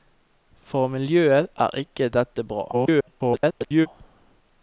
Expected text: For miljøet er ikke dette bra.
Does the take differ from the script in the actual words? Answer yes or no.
yes